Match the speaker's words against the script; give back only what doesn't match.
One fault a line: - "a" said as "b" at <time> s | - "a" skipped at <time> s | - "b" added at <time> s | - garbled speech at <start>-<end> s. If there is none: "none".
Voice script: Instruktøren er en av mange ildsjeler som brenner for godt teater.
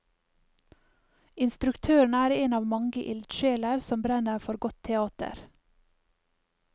none